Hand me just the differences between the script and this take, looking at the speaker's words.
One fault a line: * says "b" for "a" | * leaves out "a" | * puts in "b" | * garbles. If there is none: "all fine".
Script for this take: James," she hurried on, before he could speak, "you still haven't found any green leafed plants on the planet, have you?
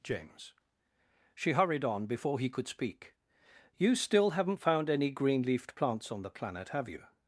all fine